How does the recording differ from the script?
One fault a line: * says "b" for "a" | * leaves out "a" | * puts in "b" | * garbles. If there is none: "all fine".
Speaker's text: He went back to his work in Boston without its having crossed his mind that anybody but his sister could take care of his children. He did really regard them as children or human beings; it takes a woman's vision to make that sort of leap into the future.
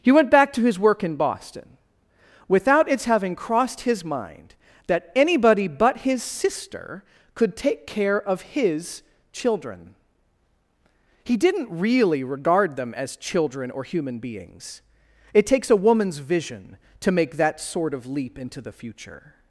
* says "didn't" for "did"